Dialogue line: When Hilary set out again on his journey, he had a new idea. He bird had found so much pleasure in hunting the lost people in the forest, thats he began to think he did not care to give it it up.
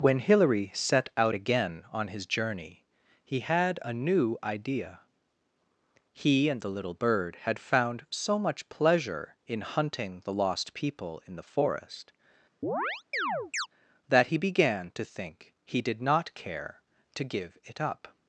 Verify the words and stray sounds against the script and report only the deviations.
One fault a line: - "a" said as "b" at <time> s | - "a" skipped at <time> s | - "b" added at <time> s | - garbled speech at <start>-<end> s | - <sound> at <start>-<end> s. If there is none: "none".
- "and the little" added at 6.5 s
- chirp at 12.6-13.7 s
- "thats" said as "that" at 14.1 s
- "it" skipped at 17.8 s